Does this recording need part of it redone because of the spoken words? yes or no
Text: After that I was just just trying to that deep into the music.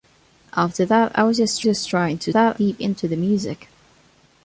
no